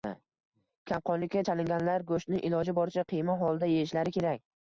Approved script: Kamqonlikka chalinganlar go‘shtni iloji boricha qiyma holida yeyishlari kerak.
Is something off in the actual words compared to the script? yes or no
no